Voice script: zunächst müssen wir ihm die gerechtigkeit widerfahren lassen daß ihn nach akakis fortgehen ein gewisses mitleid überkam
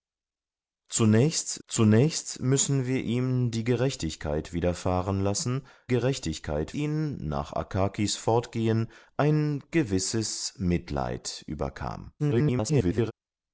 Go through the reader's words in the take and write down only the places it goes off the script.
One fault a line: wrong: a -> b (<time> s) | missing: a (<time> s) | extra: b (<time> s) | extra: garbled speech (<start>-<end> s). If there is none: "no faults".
extra: zunächst (1.7 s)
wrong: daß -> gerechtigkeit (5.9 s)
extra: garbled speech (12.2-13.1 s)